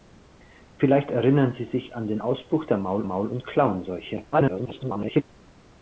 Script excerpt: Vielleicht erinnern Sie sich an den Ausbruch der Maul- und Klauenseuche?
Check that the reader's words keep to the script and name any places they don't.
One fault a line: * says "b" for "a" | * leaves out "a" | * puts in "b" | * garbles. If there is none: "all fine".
* puts in "Maul"
* garbles